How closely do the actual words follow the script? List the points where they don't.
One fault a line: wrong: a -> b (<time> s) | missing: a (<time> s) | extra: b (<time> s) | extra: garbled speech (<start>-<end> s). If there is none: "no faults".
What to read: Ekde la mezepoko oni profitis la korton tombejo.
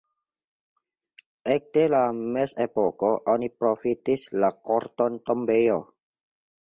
no faults